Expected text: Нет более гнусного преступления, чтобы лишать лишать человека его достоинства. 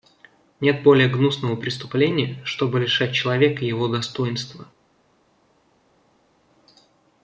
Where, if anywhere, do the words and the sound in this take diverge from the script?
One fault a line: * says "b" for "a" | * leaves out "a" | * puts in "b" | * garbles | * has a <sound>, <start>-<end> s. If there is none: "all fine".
* leaves out "лишать"